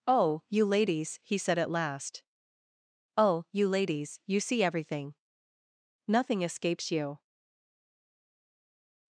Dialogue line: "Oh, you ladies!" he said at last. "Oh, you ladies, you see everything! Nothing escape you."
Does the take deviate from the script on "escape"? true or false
true